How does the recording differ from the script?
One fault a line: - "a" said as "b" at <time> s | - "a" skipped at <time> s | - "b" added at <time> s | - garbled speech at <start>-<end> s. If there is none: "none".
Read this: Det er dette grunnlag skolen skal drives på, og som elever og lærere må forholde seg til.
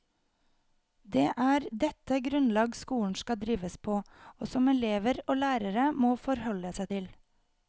none